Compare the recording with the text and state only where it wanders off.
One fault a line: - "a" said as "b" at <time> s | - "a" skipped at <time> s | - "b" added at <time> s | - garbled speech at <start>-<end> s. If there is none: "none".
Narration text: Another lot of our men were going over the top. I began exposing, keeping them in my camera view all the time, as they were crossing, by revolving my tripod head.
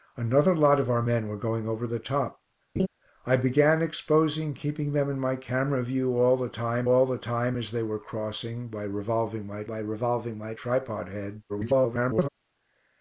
- "all the time" added at 6.9 s
- "by revolving my" added at 9.6 s
- garbled speech at 11.5-12.3 s